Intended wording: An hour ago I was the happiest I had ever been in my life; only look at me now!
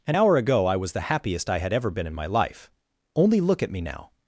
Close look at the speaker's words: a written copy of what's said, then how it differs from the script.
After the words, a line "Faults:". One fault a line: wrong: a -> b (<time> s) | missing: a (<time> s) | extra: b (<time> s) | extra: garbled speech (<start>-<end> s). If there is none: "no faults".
An hour ago I was the happiest I had ever been in my life; only look at me now!
Faults:
no faults